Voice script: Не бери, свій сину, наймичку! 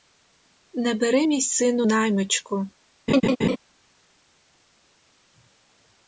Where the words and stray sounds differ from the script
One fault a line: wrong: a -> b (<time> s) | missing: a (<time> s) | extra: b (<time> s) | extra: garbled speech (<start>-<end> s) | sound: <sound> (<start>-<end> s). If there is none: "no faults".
wrong: свій -> мій (1.2 s)
sound: laugh (3.1-3.6 s)